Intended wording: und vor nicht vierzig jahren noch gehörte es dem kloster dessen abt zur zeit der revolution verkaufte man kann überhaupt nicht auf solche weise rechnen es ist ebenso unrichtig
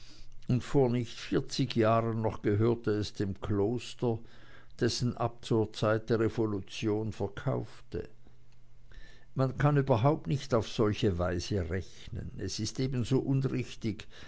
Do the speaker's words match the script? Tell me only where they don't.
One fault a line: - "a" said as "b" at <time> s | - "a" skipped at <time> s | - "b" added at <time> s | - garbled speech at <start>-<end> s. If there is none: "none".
none